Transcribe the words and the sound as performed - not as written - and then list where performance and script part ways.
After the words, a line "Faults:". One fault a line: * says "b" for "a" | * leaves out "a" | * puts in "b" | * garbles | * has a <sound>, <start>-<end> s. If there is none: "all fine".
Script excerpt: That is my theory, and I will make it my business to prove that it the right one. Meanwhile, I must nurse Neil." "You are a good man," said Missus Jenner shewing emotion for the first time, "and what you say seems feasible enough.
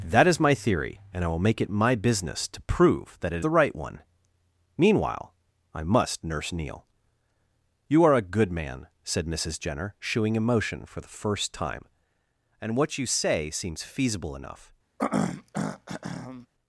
That is my theory, and I will make it my business to prove that it the right one. Meanwhile, I must nurse Neil." "You are a good man," said Missus Jenner shewing emotion for the first time, "and what you say seems feasible enough.
Faults:
* has a throat clearing, 15.0-16.5 s